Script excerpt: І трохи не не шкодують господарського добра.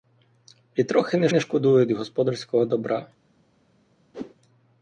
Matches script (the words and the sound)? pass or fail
fail